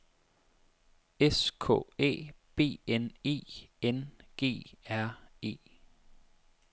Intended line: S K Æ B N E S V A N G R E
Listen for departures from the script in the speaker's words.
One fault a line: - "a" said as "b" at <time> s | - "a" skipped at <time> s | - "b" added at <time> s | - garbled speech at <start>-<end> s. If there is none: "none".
- "S V A" skipped at 3.7 s